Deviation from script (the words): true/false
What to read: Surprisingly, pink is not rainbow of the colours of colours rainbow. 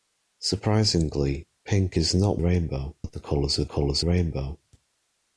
false